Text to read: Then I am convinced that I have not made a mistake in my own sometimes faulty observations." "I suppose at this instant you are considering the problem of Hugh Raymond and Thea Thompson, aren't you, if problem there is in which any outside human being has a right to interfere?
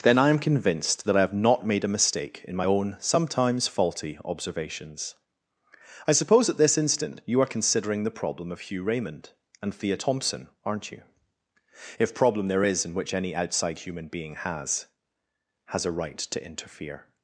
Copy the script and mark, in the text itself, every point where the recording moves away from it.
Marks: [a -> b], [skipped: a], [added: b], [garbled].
Then I am convinced that I have not made a mistake in my own sometimes faulty observations." "I suppose at this instant you are considering the problem of Hugh Raymond and Thea Thompson, aren't you, if problem there is in which any outside human being has [added: has] a right to interfere?